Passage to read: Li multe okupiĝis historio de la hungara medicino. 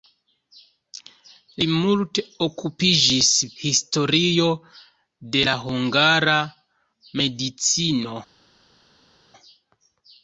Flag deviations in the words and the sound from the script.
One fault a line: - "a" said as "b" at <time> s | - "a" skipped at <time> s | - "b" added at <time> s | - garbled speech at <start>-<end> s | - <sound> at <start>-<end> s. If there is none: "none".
none